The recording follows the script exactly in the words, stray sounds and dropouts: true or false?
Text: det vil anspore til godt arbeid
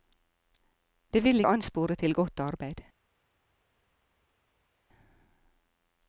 true